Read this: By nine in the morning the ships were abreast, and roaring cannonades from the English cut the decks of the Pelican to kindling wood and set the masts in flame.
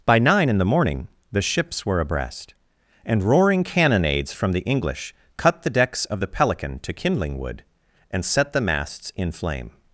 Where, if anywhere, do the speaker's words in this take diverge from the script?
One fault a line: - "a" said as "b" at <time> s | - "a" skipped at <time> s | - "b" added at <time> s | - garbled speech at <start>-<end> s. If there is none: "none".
none